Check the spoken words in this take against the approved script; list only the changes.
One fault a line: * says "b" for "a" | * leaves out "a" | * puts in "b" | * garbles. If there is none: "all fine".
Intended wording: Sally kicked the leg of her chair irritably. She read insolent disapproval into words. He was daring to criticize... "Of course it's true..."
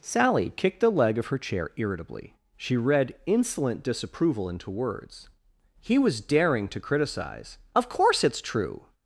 all fine